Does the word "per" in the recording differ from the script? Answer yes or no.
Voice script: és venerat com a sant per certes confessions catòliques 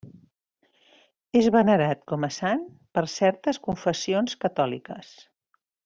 no